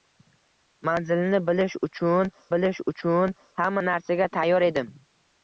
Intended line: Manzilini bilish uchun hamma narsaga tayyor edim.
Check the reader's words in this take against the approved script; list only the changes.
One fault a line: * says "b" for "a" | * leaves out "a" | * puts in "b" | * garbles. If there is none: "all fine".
* puts in "bilish uchun"